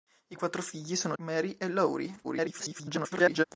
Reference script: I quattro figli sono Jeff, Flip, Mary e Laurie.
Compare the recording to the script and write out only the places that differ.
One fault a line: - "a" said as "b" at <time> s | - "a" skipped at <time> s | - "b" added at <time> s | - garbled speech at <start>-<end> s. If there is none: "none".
- "Jeff Flip" skipped at 1.2 s
- garbled speech at 2.2-3.4 s